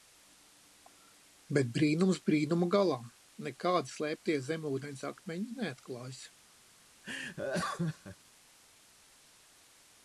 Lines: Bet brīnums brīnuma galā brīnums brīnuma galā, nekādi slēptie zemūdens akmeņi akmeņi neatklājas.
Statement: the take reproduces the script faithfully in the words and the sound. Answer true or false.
false